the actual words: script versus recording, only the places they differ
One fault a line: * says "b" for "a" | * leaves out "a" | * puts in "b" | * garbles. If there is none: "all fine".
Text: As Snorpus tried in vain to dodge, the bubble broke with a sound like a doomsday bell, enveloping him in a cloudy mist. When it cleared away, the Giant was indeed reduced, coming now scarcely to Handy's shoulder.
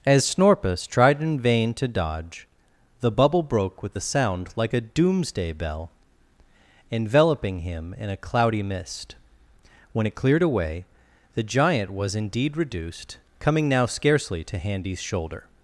all fine